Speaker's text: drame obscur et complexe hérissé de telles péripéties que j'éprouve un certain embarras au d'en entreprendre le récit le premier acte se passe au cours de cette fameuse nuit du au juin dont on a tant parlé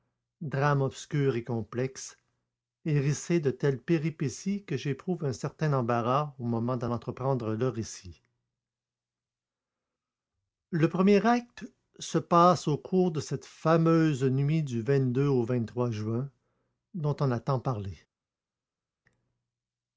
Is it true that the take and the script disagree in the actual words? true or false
true